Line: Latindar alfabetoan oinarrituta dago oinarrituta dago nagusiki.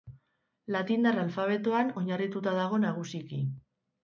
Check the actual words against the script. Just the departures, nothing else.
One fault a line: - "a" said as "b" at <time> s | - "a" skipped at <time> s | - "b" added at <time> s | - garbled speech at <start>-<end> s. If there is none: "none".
- "oinarrituta dago" skipped at 2.8 s